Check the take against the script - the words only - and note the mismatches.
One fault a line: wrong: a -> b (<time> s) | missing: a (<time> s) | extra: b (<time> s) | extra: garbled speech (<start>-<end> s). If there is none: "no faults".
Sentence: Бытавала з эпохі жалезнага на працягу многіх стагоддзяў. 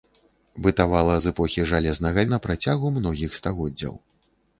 no faults